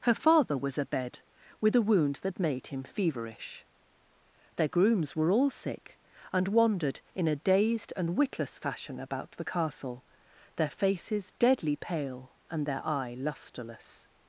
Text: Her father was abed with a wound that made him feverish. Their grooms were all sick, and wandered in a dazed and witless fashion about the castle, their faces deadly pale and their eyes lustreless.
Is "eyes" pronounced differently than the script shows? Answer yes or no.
yes